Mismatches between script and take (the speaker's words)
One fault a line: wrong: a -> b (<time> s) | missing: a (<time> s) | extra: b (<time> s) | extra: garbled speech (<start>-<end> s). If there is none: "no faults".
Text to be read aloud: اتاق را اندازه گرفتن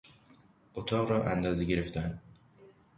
no faults